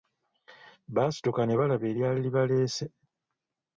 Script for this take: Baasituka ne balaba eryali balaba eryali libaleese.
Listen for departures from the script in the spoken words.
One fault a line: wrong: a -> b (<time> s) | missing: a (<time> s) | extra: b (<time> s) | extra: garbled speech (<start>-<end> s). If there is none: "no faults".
missing: balaba eryali (2.2 s)